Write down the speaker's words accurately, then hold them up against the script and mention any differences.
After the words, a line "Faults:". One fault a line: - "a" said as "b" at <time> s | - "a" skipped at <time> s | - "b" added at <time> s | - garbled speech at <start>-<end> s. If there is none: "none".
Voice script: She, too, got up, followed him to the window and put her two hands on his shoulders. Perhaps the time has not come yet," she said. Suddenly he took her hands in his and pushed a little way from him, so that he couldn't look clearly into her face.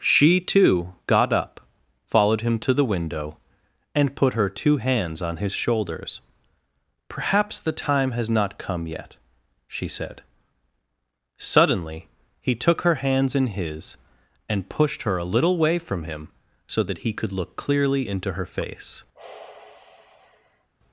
She, too, got up, followed him to the window and put her two hands on his shoulders. Perhaps the time has not come yet," she said. Suddenly he took her hands in his and pushed her a little way from him, so that he could look clearly into her face.
Faults:
- "her" added at 15.0 s
- "couldn't" said as "could" at 17.1 s